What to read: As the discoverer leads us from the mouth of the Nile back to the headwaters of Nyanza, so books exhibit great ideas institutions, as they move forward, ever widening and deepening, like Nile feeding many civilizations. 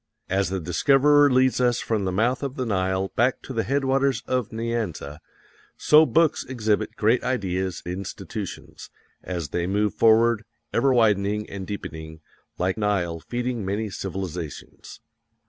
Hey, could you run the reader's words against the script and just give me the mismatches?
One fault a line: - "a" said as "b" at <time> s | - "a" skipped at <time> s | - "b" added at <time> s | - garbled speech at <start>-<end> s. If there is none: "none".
none